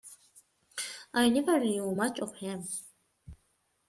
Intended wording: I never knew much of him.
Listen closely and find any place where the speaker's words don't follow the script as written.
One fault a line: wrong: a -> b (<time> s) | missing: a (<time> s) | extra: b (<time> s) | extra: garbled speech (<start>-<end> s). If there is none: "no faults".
no faults